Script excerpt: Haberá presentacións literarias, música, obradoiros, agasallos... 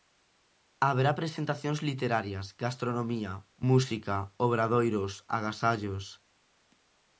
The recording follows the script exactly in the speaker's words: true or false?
false